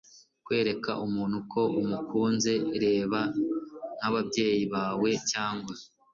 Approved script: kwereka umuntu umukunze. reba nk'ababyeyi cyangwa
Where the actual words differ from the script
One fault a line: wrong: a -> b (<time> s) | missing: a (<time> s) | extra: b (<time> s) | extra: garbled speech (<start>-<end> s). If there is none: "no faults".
extra: ko (1.5 s)
extra: bawe (4.7 s)